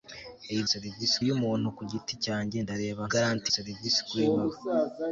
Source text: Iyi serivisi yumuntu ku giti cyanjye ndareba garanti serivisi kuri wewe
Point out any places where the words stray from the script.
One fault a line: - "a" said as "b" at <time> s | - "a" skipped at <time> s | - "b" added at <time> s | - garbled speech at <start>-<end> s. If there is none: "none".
none